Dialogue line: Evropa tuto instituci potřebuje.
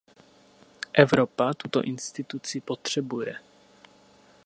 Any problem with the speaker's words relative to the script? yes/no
no